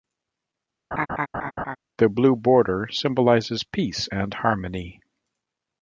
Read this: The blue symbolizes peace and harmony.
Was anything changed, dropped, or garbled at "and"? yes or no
no